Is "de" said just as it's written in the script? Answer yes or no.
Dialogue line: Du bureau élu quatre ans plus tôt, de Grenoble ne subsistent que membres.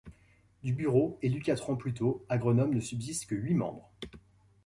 no